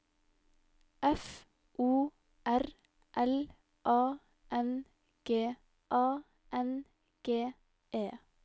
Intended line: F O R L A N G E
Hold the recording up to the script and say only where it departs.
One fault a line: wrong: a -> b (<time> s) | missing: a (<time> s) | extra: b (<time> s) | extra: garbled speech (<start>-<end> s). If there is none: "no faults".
extra: A N G (5.9 s)